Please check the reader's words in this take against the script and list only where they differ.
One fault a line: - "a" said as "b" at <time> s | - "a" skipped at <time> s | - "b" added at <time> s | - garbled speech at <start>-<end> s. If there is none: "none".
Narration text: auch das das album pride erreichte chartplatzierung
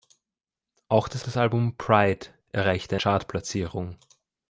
none